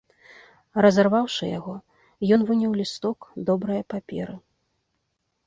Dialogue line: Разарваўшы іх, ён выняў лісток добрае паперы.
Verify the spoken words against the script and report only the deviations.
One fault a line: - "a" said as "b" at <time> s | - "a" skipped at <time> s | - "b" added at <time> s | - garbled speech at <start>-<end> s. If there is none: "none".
- "іх" said as "яго" at 1.6 s